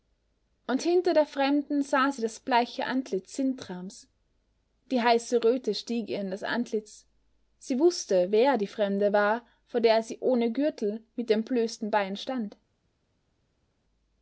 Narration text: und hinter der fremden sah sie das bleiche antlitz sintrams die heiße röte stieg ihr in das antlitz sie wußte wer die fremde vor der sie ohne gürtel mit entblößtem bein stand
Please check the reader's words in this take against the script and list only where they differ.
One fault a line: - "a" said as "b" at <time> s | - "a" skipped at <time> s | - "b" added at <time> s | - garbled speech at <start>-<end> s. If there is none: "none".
- "war" added at 9.1 s